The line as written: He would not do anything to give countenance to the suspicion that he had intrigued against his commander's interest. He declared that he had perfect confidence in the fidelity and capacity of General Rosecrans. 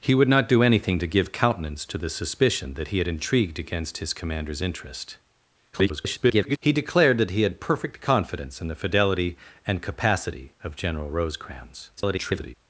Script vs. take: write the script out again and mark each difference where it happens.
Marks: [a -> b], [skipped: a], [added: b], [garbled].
He would not do anything to give countenance to the suspicion that he had intrigued against his commander's interest. [garbled] He declared that he had perfect confidence in the fidelity and capacity of General Rosecrans. [garbled]